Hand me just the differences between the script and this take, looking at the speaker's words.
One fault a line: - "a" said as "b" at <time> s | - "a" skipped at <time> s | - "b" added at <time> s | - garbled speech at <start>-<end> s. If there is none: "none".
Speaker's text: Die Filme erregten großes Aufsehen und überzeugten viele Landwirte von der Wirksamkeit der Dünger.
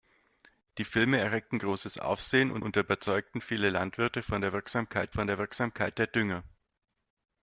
- "und" added at 2.6 s
- "von der Wirksamkeit" added at 5.1 s